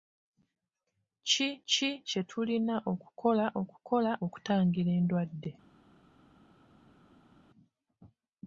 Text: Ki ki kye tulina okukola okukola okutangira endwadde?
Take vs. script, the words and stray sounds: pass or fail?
pass